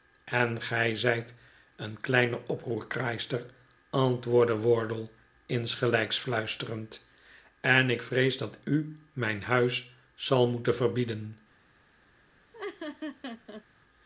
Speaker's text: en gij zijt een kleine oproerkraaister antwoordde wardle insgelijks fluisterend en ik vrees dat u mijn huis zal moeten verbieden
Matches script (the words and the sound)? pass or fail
fail